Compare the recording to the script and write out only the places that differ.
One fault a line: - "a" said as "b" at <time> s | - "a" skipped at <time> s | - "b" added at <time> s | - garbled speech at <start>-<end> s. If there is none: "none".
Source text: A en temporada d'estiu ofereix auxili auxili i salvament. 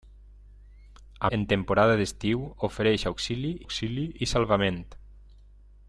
none